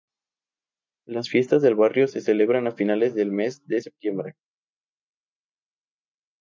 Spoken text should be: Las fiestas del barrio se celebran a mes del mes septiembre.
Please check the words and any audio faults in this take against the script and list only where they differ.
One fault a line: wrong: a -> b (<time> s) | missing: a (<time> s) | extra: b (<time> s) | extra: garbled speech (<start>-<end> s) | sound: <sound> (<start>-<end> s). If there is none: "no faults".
wrong: mes -> finales (2.7 s)
extra: de (3.6 s)